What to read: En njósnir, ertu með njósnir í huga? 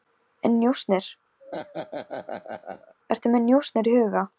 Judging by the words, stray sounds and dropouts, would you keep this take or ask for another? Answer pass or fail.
fail